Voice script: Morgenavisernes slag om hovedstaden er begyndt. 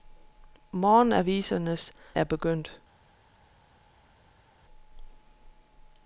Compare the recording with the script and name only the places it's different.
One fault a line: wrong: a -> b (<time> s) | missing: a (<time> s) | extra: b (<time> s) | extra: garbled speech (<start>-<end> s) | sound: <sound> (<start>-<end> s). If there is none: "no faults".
missing: slag om hovedstaden (1.9 s)